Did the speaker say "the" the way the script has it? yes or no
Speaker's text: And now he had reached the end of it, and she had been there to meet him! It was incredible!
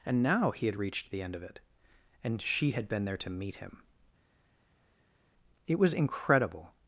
yes